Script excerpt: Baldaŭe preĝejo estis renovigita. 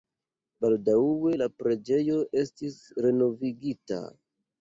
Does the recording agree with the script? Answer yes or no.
no